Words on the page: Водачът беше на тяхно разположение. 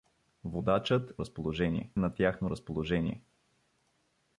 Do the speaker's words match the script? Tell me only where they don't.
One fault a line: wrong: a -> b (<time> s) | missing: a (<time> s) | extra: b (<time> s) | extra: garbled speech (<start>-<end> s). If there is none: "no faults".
wrong: беше -> разположение (1.2 s)